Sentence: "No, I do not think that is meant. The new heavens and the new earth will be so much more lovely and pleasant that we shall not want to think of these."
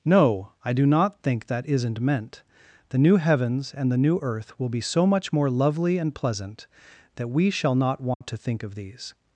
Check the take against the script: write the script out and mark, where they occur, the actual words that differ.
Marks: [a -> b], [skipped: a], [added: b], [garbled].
"No, I do not think that [is -> isn't] meant. The new heavens and the new earth will be so much more lovely and pleasant that we shall not want to think of these."